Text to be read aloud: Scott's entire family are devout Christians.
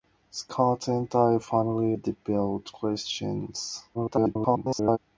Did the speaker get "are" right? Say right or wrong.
wrong